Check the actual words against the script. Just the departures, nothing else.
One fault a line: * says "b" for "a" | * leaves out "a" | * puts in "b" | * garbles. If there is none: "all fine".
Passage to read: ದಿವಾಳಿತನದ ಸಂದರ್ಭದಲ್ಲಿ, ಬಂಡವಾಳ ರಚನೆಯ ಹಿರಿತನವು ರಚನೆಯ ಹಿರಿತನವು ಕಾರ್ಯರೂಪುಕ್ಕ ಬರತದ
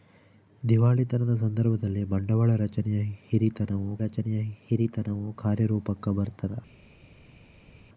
all fine